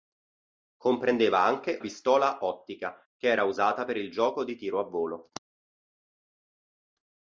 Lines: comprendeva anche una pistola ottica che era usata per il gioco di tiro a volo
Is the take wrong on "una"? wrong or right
wrong